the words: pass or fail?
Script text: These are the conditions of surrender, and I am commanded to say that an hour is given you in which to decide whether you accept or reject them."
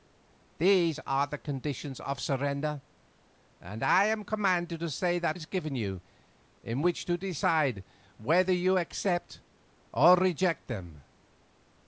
fail